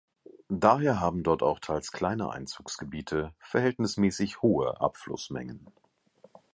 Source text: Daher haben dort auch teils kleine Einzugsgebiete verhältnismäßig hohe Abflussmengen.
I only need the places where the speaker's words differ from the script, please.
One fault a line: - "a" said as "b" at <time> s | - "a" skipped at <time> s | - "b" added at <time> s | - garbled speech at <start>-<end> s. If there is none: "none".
none